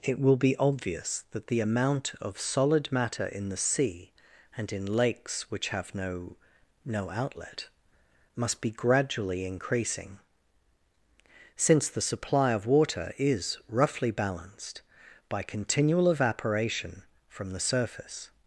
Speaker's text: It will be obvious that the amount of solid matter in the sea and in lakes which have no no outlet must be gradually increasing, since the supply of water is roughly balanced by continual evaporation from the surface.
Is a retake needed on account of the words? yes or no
no